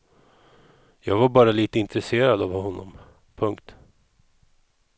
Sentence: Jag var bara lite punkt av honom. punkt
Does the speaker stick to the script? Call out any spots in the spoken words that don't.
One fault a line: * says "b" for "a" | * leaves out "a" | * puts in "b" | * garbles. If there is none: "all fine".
* says "intresserad" for "punkt"